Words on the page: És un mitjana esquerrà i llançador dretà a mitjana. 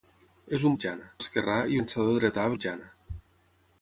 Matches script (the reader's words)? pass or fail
pass